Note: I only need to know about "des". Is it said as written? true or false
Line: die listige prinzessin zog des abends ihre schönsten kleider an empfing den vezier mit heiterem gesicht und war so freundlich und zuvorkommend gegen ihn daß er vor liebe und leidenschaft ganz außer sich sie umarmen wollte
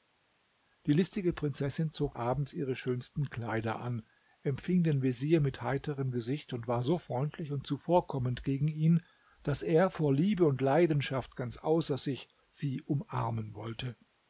false